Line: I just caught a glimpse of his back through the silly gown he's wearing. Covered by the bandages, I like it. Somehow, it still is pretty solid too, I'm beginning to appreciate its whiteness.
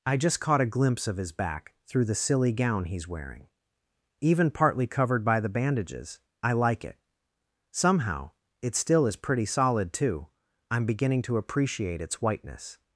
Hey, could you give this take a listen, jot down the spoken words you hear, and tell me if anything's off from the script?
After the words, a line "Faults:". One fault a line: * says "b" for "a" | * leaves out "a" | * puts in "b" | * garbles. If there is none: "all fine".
I just caught a glimpse of his back through the silly gown he's wearing. Even partly covered by the bandages, I like it. Somehow, it still is pretty solid too, I'm beginning to appreciate its whiteness.
Faults:
* puts in "Even partly"